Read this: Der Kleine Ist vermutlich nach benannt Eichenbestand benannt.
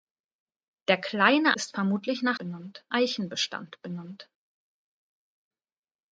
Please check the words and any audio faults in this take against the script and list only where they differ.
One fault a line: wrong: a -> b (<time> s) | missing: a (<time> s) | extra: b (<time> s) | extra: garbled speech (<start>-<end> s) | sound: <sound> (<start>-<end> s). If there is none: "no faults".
no faults